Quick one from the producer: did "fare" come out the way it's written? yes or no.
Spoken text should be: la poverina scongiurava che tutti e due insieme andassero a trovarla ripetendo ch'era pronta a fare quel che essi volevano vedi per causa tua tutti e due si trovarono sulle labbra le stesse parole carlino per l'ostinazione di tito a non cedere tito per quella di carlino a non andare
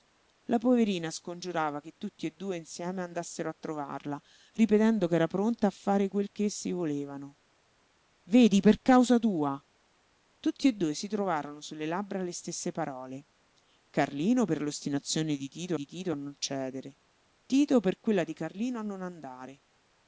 yes